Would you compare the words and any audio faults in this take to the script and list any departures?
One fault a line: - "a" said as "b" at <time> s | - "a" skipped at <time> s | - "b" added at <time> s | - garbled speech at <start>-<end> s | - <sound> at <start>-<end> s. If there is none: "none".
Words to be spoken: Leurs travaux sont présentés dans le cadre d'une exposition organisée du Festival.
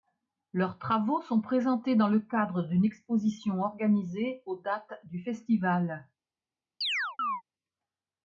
- "aux dates" added at 4.5 s
- chirp at 6.8-7.4 s